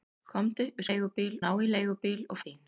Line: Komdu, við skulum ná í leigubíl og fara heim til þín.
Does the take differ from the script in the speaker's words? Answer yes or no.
yes